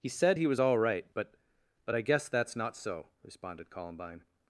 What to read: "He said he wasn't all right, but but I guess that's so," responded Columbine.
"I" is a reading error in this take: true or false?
false